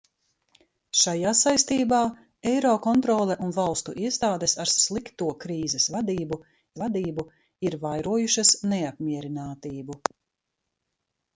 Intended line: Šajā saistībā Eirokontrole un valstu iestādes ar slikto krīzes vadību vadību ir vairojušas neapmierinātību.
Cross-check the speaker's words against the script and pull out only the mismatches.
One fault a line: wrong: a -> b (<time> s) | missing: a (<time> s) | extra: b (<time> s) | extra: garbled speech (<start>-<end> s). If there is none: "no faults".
no faults